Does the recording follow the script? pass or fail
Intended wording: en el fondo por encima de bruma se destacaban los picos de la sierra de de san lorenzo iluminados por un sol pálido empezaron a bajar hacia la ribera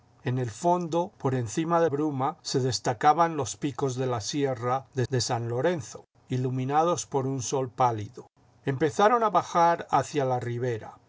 pass